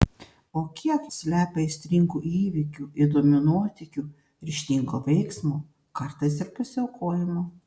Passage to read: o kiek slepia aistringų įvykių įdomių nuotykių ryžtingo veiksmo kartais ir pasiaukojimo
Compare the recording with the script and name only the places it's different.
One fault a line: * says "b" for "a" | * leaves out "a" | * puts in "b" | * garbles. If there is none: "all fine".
all fine